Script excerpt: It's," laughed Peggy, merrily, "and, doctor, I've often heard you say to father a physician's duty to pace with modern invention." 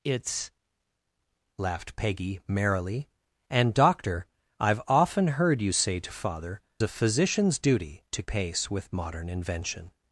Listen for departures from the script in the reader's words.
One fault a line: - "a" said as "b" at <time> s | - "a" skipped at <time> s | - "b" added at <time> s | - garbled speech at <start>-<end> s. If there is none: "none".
none